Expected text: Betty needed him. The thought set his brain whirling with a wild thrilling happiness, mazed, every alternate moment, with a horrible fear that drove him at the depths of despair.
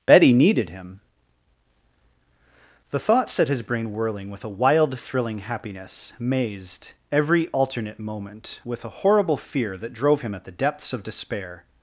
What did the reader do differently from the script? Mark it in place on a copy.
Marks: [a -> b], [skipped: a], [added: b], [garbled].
Betty needed him. The thought set his brain whirling with a wild thrilling happiness, mazed, every alternate moment, with a horrible fear that drove him at the depths of despair.